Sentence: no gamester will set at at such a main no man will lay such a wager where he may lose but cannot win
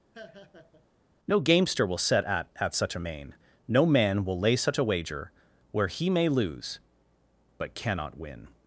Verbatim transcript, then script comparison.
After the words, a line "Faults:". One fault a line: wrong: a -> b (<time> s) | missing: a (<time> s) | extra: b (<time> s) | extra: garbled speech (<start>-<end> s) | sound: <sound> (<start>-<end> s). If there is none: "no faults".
no gamester will set at at such a main no man will lay such a wager where he may lose but cannot win
Faults:
sound: laugh (0.1-0.9 s)